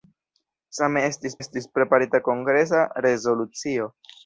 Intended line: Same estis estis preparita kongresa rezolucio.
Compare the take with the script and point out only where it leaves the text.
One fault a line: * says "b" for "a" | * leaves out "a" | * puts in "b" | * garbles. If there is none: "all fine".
all fine